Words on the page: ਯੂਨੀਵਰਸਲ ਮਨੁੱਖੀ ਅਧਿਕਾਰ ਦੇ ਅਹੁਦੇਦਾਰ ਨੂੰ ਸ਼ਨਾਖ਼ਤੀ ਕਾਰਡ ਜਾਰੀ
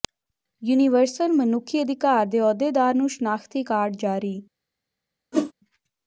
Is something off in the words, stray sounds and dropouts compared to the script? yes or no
yes